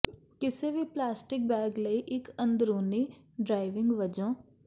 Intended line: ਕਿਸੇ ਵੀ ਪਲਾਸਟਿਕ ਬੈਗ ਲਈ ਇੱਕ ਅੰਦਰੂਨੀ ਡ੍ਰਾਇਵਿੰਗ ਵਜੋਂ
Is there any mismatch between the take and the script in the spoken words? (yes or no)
no